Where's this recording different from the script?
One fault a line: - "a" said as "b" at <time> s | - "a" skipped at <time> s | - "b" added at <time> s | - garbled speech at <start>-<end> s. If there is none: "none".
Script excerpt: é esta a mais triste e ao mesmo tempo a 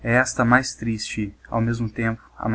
none